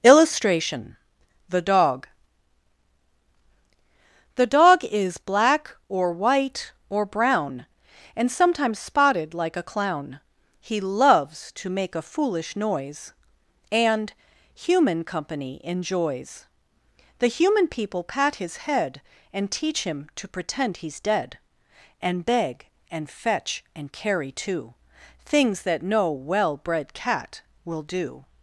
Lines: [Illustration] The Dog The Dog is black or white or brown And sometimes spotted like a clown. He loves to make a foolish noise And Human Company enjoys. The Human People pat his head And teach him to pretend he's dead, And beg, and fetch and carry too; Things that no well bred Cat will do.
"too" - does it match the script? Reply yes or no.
yes